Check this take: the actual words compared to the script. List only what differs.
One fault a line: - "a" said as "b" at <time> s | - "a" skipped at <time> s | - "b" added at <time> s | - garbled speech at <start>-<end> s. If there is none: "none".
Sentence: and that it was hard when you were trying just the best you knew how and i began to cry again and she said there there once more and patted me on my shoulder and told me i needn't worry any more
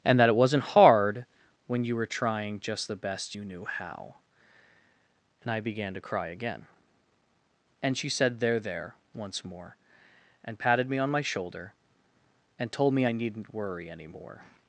- "was" said as "wasn't" at 0.3 s